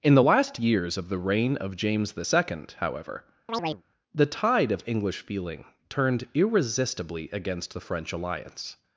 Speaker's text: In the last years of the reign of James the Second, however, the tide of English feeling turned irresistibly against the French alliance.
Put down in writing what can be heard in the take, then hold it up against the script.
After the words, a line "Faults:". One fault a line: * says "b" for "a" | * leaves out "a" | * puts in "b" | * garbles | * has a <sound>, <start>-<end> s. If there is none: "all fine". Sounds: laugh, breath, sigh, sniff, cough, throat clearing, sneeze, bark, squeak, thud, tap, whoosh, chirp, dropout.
In the last years of the reign of James the Second, however, the tide of English feeling turned irresistibly against the French alliance.
Faults:
* has a chirp, 3.5-3.8 s